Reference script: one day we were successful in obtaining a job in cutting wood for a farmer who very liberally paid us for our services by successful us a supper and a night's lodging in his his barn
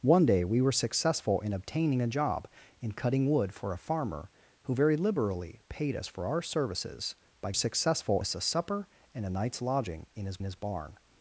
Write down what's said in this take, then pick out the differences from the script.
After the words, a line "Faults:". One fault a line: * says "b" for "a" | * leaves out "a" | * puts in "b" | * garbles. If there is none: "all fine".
one day we were successful in obtaining a job in cutting wood for a farmer who very liberally paid us for our services by successful us a supper and a night's lodging in his his barn
Faults:
all fine